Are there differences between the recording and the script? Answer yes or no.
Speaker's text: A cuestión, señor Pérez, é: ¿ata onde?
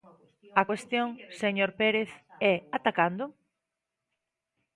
yes